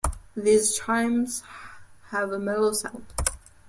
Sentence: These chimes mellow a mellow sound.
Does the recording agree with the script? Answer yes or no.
no